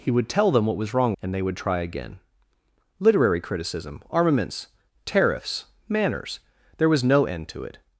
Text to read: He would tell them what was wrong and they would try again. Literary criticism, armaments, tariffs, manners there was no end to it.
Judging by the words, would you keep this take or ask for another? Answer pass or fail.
pass